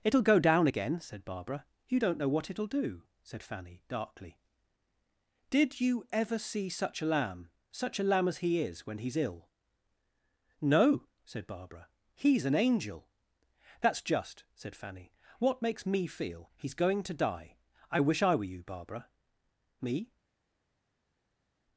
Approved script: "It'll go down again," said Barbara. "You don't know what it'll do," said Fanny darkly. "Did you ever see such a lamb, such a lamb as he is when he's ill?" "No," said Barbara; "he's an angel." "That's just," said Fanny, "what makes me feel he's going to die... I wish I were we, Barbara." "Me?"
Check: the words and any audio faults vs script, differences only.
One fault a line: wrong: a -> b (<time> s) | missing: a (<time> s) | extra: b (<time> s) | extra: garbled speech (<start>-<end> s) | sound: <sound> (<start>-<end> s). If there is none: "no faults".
wrong: we -> you (18.5 s)